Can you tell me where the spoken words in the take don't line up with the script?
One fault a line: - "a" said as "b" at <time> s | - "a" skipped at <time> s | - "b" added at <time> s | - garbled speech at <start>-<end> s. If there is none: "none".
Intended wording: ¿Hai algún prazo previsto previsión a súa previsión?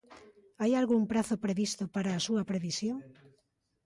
- "previsión" said as "para" at 1.9 s